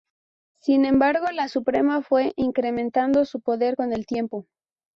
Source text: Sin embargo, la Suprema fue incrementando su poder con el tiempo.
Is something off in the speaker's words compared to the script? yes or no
no